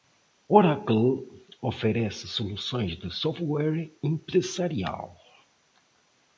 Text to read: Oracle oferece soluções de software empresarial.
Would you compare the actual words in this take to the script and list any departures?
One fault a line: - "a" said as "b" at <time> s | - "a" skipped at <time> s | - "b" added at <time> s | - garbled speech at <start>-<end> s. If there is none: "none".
none